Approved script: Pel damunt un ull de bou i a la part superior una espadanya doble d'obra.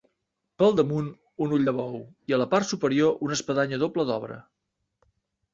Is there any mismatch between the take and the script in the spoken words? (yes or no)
no